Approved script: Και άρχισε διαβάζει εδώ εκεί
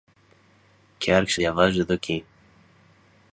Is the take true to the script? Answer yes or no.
yes